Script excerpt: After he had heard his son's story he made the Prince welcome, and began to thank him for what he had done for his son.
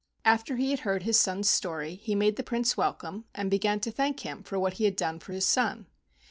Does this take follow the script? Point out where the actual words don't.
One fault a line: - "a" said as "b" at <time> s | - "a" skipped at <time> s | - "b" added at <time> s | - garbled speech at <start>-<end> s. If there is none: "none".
none